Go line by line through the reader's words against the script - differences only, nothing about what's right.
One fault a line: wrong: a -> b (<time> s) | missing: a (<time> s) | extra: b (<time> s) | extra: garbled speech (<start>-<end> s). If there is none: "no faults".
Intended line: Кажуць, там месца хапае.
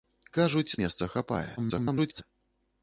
missing: там (0.8 s)
extra: garbled speech (1.6-2.2 s)